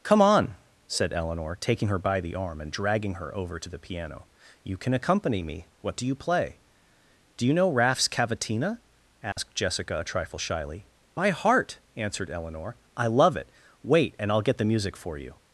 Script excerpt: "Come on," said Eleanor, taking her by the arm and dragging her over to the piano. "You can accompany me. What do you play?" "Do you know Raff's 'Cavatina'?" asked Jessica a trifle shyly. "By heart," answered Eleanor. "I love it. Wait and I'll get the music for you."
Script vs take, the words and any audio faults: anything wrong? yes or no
yes